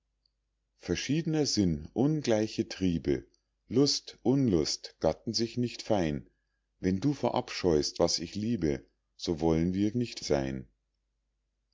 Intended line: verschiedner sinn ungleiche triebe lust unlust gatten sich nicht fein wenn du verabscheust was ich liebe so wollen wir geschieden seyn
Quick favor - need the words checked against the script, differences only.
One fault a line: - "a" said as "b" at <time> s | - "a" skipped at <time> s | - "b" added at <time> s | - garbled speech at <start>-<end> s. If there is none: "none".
- "geschieden" said as "nicht" at 9.9 s